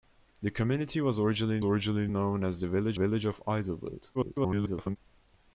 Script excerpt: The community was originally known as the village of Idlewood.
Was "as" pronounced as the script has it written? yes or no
yes